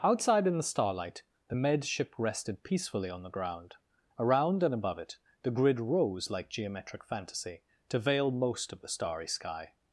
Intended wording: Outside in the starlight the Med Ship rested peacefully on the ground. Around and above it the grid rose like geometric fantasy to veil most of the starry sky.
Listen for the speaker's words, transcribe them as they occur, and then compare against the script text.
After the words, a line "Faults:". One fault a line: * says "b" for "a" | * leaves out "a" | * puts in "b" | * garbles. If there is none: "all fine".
Outside in the starlight the Med Ship rested peacefully on the ground. Around and above it the grid rose like geometric fantasy to veil most of the starry sky.
Faults:
all fine